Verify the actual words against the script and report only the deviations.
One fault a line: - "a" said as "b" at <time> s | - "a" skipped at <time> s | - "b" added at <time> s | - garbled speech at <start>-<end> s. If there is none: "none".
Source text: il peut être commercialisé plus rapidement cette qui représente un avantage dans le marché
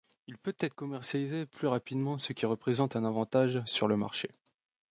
- "cette" said as "ce" at 2.2 s
- "dans" said as "sur" at 3.7 s